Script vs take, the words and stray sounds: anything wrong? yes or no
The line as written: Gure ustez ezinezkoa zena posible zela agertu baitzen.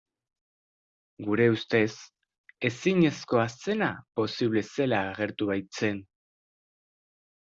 no